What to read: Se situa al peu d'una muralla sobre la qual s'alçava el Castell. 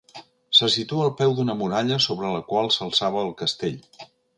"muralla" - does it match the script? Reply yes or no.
yes